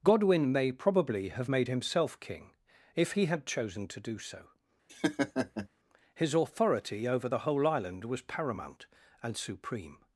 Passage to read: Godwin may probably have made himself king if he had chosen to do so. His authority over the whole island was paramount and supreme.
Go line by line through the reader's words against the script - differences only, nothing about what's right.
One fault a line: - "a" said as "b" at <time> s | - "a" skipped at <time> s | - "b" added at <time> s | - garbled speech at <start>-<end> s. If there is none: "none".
none